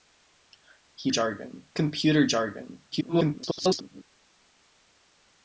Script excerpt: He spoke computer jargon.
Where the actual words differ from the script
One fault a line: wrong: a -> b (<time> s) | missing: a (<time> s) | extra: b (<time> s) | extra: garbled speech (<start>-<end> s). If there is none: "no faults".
wrong: spoke -> jargon (1.1 s)
extra: garbled speech (2.9-4.0 s)